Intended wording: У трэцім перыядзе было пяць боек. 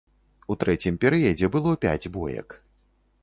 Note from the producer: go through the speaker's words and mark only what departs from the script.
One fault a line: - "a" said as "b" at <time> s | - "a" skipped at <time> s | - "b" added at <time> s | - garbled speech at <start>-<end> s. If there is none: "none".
none